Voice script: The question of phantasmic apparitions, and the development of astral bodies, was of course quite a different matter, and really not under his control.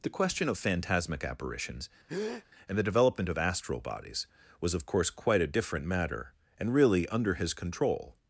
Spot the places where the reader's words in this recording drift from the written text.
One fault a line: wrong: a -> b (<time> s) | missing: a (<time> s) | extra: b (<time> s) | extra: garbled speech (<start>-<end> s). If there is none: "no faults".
missing: not (7.1 s)